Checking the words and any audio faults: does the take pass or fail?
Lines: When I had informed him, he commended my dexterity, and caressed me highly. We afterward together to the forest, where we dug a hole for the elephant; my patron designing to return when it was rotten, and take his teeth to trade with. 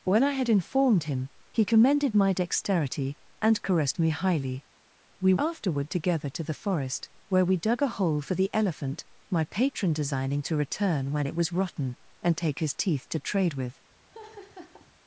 fail